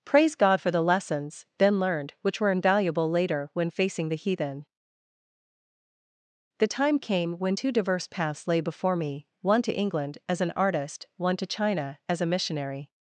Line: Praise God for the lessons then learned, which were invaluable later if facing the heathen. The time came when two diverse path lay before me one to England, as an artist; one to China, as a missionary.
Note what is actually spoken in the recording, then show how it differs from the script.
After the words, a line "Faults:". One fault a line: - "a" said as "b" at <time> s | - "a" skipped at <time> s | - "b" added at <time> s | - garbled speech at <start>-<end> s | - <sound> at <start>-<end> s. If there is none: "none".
Praise God for the lessons then learned, which were invaluable later when facing the heathen. The time came when two diverse paths lay before me one to England, as an artist; one to China, as a missionary.
Faults:
- "if" said as "when" at 3.5 s
- "path" said as "paths" at 8.1 s